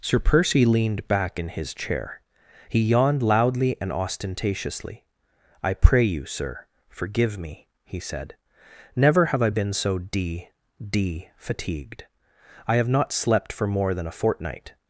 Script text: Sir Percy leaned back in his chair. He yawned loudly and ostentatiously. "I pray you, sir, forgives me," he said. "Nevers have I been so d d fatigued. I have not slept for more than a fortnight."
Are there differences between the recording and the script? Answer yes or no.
yes